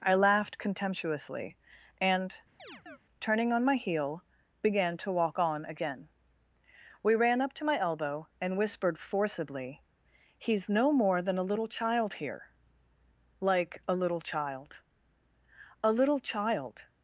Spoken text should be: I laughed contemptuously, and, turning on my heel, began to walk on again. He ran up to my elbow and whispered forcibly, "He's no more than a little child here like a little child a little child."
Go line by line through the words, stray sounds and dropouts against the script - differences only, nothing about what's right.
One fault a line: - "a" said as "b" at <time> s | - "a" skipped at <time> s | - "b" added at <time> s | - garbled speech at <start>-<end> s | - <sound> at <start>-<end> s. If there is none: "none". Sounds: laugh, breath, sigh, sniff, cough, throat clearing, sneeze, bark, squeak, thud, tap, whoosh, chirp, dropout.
- chirp at 2.6-3.0 s
- "He" said as "We" at 7.0 s